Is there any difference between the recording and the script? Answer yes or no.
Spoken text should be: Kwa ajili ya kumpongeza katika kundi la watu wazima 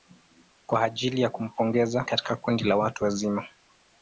no